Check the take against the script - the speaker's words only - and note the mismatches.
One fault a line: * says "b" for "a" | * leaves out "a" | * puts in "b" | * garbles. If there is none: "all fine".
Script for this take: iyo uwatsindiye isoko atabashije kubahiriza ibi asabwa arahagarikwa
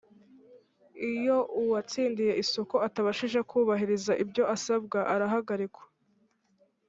* says "ibyo" for "ibi"